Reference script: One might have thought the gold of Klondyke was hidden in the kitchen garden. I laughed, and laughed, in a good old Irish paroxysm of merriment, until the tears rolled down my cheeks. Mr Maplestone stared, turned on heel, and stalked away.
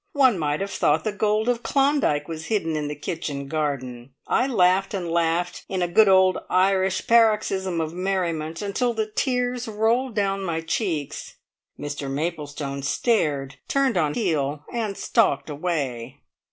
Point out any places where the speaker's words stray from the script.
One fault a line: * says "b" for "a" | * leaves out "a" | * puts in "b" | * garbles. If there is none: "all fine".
all fine